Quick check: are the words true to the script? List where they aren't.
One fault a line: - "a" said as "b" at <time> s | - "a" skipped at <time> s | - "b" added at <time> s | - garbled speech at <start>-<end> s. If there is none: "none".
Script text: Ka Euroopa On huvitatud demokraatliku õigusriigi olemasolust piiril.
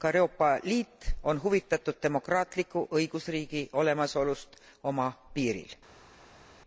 - "Liit" added at 0.7 s
- "oma" added at 4.9 s